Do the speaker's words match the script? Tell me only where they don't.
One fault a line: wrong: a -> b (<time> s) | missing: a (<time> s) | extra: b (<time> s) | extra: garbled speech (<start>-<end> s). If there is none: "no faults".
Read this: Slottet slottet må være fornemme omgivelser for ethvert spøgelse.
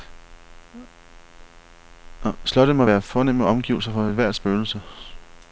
missing: slottet (2.8 s)